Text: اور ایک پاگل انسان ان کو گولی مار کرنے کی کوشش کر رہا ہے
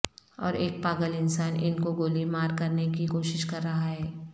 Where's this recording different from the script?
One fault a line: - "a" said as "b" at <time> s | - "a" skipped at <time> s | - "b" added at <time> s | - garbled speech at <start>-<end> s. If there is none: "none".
none